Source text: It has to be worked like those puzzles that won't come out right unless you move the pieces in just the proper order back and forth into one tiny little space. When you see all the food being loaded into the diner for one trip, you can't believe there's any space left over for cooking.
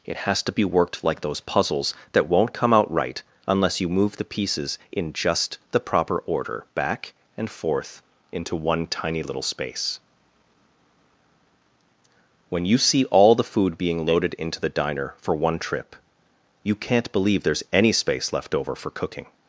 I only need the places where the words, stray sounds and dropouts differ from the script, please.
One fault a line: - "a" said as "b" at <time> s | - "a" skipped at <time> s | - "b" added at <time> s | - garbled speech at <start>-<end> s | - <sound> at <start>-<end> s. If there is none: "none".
none